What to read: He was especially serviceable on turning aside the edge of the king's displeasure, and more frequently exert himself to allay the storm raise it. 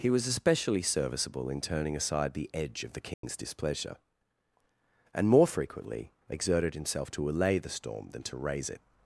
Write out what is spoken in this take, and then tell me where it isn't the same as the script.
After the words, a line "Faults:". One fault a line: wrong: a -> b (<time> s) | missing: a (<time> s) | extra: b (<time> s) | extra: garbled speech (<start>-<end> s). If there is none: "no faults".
He was especially serviceable in turning aside the edge of the king's displeasure, and more frequently exerted himself to allay the storm than to raise it.
Faults:
wrong: on -> in (1.5 s)
wrong: exert -> exerted (6.3 s)
extra: than to (8.1 s)